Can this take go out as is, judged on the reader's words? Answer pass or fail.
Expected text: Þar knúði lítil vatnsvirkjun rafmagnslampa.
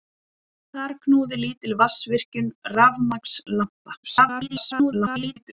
fail